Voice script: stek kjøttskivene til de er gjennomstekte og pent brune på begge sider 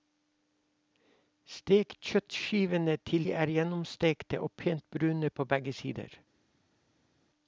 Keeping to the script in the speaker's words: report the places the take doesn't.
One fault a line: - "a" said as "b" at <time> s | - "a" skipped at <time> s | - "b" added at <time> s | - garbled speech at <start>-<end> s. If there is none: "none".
none